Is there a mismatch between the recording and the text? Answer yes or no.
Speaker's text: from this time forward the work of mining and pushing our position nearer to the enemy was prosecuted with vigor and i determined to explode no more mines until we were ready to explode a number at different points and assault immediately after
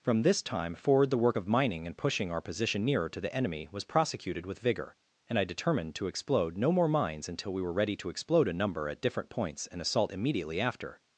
no